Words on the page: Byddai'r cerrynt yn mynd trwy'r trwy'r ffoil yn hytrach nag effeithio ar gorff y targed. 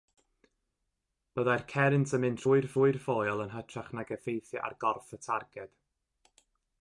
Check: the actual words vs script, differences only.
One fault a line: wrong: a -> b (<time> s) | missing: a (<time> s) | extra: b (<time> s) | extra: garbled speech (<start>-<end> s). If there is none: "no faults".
no faults